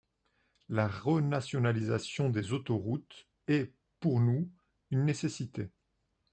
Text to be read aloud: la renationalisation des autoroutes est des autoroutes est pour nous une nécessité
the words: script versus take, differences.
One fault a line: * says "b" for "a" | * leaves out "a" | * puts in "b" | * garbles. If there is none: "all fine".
* leaves out "des autoroutes est"